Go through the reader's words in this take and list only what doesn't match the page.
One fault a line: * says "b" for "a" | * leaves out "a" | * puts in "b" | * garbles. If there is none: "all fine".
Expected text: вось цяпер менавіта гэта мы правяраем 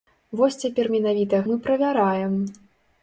* leaves out "гэта"